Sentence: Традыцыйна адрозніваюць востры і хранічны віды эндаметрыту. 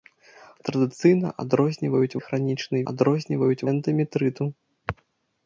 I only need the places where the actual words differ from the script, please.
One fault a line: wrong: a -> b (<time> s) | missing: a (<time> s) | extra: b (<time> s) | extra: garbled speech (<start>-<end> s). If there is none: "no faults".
missing: востры (2.2 s)
wrong: віды -> адрозніваюць (2.9 s)